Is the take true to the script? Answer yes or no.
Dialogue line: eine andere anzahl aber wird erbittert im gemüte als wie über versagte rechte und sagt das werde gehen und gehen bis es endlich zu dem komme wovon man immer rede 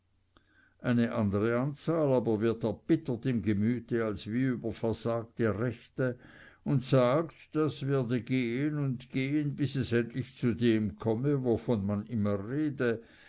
yes